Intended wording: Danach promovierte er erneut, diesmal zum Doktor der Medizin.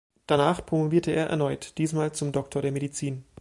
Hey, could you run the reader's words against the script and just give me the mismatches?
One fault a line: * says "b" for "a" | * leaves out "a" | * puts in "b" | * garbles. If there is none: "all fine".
all fine